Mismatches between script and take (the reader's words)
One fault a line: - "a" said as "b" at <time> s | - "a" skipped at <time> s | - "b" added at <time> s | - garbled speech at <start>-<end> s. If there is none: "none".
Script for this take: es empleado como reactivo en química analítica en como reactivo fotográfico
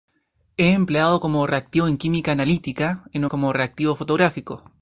none